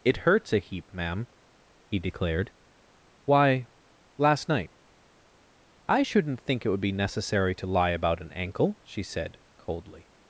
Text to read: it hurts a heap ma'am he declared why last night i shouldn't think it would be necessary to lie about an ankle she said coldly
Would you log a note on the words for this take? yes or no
no